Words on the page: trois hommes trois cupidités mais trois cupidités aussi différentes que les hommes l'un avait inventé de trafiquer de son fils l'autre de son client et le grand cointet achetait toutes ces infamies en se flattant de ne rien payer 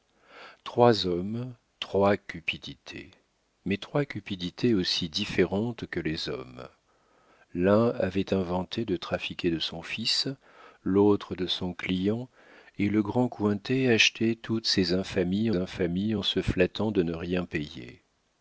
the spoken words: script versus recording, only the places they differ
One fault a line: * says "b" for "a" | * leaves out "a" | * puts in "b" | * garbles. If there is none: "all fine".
* puts in "infamies"